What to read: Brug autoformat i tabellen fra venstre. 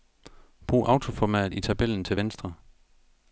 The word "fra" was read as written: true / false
false